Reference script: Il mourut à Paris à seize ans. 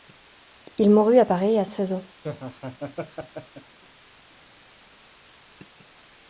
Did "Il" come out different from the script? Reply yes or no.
no